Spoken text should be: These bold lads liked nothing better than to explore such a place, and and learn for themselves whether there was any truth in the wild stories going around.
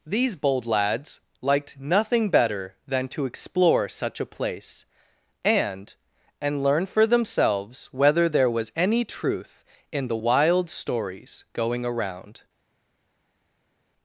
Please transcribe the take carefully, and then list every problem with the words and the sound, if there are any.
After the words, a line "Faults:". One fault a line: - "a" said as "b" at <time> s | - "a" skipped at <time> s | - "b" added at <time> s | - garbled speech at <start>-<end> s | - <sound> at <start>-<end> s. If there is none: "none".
These bold lads liked nothing better than to explore such a place, and and learn for themselves whether there was any truth in the wild stories going around.
Faults:
none